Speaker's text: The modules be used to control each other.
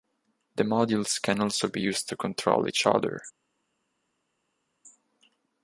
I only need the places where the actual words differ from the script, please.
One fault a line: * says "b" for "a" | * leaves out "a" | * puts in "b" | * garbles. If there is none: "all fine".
* puts in "can also"